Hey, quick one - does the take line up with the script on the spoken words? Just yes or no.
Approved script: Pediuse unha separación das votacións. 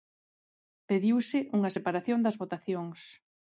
yes